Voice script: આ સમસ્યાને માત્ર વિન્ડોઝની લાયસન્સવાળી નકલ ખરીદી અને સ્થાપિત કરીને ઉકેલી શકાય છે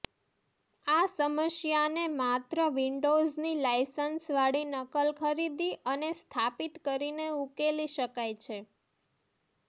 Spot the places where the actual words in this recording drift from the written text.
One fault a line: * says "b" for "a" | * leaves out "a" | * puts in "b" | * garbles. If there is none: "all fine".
all fine